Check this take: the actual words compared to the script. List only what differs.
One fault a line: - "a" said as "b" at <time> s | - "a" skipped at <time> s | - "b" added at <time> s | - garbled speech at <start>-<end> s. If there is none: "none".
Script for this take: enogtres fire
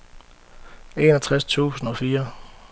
- "tusind og" added at 1.4 s